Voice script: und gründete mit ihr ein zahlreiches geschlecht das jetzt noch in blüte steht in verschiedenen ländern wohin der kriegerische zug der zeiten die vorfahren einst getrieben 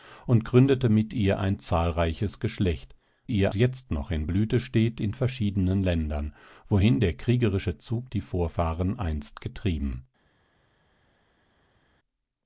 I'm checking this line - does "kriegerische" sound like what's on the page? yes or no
yes